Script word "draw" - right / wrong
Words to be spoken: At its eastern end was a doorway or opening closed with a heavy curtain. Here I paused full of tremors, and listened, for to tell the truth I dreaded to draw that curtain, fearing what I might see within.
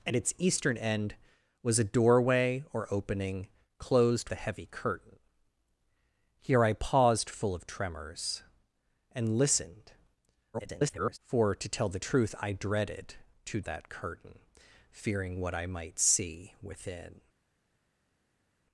wrong